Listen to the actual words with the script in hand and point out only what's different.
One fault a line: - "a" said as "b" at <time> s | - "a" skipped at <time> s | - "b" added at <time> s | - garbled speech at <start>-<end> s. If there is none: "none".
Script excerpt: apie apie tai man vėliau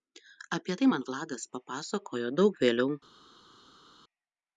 - "apie" skipped at 0.8 s
- "vladas papasakojo daug" added at 1.1 s